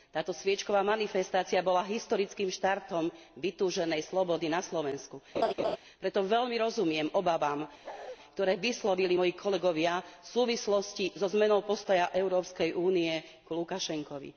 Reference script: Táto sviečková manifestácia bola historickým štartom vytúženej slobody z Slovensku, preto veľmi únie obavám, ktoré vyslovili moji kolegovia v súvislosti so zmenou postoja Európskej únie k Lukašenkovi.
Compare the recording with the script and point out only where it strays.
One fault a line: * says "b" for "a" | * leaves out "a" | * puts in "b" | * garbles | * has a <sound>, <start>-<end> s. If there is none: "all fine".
* says "na" for "z"
* has a laugh, 5.3-5.8 s
* says "rozumiem" for "únie"
* has a bark, 7.8-8.2 s